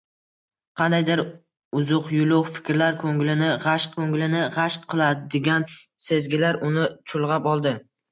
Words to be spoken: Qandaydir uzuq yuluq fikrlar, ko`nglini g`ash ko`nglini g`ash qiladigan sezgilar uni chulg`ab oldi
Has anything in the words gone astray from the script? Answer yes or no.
no